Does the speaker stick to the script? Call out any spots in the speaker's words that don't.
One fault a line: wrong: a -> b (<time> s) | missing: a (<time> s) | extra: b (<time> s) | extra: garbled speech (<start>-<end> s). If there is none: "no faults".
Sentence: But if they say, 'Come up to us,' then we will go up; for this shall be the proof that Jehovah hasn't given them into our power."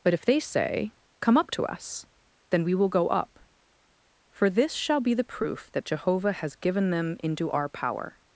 wrong: hasn't -> has (6.3 s)